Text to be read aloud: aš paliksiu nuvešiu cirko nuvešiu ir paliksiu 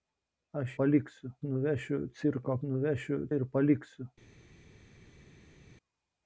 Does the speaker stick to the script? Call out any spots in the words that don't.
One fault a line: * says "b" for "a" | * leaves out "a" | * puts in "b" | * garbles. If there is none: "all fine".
all fine